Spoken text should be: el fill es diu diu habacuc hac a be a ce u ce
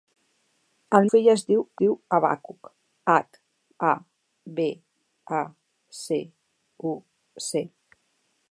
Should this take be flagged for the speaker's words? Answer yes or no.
no